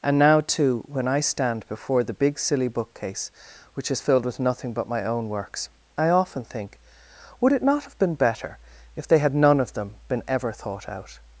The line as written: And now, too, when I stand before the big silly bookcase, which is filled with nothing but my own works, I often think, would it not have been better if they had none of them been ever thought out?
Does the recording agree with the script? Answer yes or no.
yes